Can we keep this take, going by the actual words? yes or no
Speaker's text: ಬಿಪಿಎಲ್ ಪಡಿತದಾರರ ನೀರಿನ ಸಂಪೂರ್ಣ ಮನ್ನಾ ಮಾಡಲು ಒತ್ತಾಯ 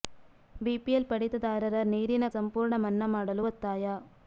yes